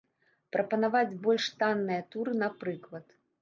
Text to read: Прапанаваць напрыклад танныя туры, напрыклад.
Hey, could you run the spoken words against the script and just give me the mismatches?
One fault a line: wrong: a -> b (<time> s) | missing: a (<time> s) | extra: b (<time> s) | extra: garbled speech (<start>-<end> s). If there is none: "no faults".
wrong: напрыклад -> больш (1.3 s)